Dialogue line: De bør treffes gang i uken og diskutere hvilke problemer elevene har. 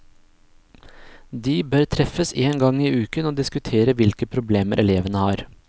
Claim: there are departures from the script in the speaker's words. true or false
true